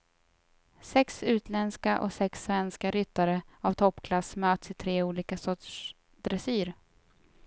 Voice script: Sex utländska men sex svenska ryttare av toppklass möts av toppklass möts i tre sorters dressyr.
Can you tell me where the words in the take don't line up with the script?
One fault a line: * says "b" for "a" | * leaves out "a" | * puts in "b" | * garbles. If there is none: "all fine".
* says "och" for "men"
* leaves out "av toppklass möts"
* puts in "olika"